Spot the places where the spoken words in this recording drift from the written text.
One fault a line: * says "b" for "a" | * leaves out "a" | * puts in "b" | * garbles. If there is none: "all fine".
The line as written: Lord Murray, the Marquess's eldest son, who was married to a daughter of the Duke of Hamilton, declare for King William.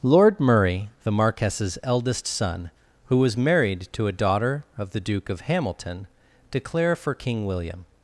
all fine